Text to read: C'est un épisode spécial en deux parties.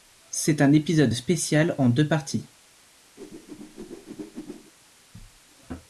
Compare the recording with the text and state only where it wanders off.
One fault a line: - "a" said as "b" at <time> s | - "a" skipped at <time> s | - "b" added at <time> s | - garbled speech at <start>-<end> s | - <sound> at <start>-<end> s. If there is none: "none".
- whoosh at 3.2-4.7 s